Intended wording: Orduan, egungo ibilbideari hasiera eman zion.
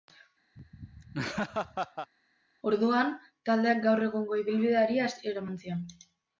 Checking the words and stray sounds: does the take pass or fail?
fail